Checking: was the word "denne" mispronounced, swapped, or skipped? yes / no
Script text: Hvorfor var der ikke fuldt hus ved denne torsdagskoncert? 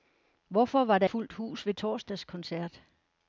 yes